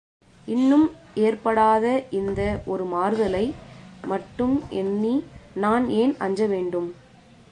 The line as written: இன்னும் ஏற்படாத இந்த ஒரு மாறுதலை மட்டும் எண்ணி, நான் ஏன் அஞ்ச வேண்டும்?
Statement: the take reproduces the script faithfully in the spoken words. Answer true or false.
true